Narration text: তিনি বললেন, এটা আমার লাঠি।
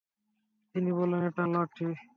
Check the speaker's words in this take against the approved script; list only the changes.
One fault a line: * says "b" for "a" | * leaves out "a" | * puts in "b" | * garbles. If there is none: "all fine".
* leaves out "আমার"